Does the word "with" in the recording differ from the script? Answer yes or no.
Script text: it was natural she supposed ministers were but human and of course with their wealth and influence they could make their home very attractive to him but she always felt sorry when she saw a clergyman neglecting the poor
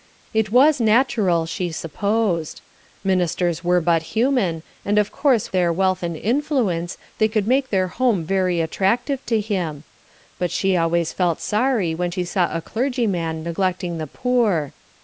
yes